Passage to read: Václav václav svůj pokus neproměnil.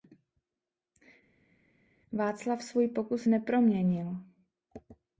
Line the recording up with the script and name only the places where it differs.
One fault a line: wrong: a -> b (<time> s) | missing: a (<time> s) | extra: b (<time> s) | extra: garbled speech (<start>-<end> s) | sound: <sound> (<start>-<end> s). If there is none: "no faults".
missing: václav (2.6 s)